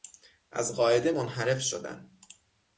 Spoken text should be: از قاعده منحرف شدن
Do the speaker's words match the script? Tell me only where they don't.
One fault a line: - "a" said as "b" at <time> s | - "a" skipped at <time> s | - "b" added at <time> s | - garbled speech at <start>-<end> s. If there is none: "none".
none